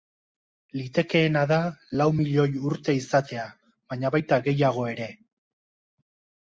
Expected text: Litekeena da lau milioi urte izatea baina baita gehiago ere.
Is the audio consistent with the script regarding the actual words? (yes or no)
yes